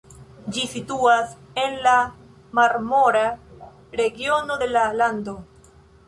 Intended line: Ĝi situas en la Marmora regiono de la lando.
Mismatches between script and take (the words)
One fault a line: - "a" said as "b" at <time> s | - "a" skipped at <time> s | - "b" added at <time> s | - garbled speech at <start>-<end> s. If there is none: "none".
none